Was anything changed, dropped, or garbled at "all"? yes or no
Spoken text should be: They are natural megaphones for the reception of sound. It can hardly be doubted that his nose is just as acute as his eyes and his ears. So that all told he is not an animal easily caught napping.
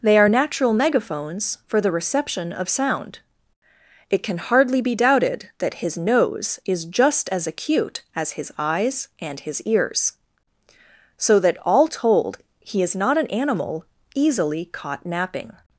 no